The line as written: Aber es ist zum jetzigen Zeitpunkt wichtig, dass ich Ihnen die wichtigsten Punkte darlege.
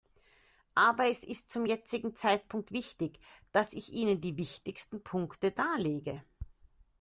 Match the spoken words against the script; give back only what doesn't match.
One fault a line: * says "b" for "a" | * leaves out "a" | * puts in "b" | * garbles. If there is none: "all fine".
all fine